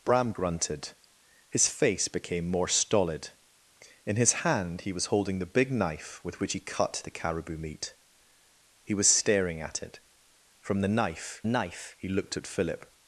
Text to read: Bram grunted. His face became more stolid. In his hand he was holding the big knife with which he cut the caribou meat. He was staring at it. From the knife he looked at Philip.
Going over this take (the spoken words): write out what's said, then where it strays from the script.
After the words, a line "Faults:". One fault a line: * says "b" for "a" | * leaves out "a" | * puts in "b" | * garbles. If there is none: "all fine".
Bram grunted. His face became more stolid. In his hand he was holding the big knife with which he cut the caribou meat. He was staring at it. From the knife knife he looked at Philip.
Faults:
* puts in "knife"